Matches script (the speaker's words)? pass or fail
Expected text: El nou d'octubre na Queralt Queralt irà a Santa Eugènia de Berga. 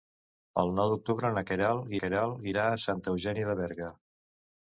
pass